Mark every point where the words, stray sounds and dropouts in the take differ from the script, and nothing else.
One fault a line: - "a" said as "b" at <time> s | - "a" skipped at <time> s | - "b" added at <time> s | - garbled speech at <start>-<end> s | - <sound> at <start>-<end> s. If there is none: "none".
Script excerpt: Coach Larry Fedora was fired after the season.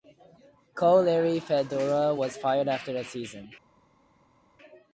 none